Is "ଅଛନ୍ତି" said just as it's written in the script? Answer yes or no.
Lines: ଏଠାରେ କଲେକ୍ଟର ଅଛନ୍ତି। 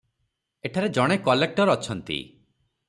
yes